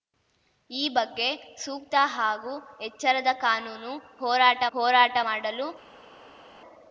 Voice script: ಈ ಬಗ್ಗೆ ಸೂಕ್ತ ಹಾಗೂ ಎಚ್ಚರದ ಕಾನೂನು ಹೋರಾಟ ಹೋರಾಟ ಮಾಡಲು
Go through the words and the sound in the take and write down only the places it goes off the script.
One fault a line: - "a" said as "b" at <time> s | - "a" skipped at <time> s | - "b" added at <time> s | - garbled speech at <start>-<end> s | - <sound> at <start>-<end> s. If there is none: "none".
none